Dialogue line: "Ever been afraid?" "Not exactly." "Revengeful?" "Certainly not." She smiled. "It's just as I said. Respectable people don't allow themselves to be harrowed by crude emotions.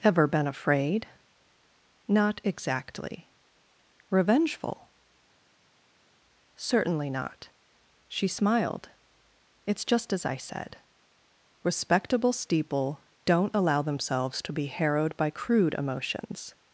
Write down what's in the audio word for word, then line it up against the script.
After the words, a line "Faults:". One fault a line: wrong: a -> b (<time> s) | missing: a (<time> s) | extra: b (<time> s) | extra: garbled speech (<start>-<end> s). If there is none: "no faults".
"Ever been afraid?" "Not exactly." "Revengeful?" "Certainly not." She smiled. "It's just as I said. Respectable steeple don't allow themselves to be harrowed by crude emotions.
Faults:
wrong: people -> steeple (12.3 s)